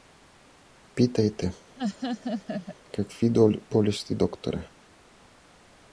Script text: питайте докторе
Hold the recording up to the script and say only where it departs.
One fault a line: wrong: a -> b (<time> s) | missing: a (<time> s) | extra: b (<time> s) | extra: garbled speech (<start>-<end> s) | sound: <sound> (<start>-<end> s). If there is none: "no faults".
sound: laugh (1.8-2.8 s)
extra: какви болести (3.0 s)